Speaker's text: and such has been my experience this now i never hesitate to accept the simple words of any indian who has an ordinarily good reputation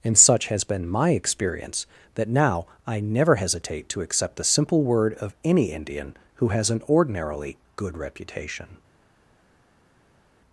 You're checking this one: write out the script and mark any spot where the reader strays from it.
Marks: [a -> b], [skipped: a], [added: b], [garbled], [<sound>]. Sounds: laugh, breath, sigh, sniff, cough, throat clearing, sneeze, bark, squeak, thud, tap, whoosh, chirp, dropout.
and such has been my experience [this -> that] now i never hesitate to accept the simple [words -> word] of any indian who has an ordinarily good reputation